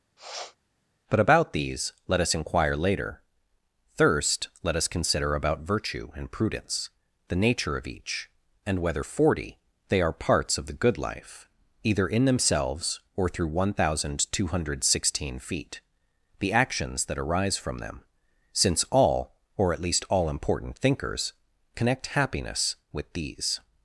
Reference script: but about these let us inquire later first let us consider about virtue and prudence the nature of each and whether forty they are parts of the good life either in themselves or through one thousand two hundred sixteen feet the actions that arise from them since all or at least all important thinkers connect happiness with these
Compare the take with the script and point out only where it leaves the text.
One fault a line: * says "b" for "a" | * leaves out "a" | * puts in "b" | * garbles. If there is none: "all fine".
* says "thirst" for "first"